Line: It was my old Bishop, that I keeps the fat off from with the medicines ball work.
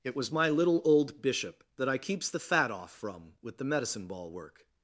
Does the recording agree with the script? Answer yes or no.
no